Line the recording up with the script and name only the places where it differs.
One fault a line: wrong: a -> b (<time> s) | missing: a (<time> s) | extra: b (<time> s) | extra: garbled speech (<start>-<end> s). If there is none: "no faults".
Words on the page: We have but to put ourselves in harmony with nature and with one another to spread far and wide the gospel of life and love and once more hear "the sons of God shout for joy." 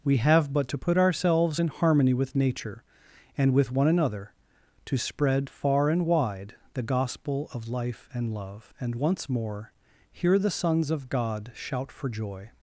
no faults